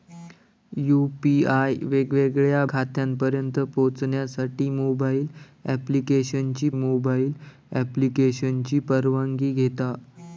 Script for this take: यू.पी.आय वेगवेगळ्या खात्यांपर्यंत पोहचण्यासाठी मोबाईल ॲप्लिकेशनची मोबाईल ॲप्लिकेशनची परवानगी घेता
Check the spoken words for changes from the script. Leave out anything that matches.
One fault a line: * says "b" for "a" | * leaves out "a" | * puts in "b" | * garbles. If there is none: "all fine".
all fine